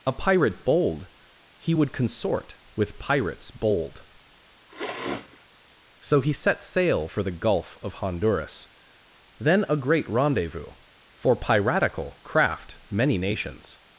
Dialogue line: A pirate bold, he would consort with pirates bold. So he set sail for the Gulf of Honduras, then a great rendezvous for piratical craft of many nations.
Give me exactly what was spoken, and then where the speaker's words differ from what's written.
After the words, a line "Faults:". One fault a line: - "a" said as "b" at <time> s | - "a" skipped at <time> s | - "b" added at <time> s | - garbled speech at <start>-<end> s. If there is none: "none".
A pirate bold, he would consort with pirates bold. So he set sail for the Gulf of Honduras, then a great rendezvous for piratical craft many nations.
Faults:
- "of" skipped at 12.8 s